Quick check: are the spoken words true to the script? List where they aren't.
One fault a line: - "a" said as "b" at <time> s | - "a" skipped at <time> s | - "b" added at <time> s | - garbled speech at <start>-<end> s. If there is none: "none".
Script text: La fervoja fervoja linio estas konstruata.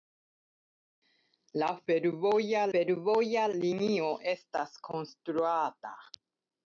none